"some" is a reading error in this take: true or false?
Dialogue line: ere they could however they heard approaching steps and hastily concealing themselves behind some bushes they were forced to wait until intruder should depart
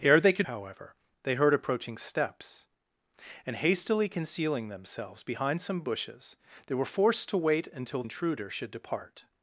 false